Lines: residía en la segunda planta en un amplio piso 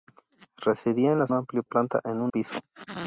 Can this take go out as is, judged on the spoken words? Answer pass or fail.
fail